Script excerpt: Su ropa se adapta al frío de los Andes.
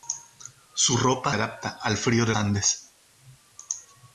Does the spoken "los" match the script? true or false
false